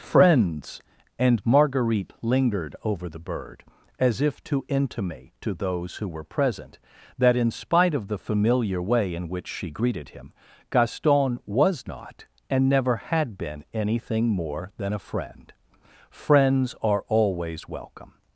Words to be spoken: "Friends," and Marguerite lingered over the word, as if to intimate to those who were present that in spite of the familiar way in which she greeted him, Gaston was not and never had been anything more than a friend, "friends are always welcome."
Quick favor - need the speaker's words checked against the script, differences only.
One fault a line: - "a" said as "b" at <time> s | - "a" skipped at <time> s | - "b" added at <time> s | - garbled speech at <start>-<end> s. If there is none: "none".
- "word" said as "bird" at 3.2 s